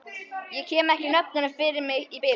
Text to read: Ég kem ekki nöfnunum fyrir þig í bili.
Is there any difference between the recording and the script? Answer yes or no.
yes